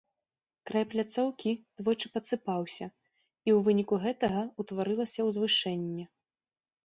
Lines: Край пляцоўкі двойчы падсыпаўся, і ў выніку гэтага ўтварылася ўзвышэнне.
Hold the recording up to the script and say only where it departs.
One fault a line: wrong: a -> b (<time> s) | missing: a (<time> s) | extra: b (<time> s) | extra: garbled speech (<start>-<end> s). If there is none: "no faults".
no faults